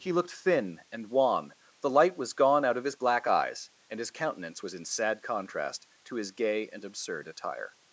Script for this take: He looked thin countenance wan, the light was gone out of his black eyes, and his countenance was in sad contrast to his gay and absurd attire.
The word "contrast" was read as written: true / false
true